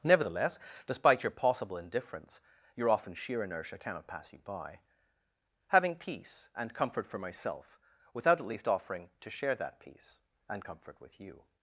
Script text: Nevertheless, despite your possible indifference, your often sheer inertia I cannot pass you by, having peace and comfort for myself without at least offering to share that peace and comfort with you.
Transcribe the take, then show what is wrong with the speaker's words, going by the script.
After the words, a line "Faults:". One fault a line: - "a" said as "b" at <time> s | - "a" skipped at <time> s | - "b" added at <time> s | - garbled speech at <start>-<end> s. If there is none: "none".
Nevertheless, despite your possible indifference, your often sheer inertia cannot pass you by, having peace and comfort for myself without at least offering to share that peace and comfort with you.
Faults:
- "I" skipped at 3.8 s